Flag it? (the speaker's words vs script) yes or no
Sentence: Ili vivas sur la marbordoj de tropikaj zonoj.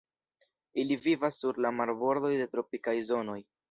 no